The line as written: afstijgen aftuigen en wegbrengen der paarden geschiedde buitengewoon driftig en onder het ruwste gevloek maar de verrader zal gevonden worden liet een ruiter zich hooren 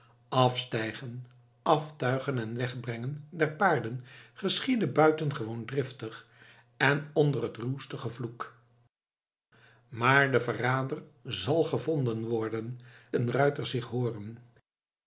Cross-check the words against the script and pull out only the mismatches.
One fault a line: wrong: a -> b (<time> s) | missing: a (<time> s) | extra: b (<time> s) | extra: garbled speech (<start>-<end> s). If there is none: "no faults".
missing: liet (12.8 s)